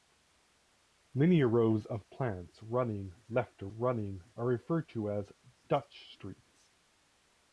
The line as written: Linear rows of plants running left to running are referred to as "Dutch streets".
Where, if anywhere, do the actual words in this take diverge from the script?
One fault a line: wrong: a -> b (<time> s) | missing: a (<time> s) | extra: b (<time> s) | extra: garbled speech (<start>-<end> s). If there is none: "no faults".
no faults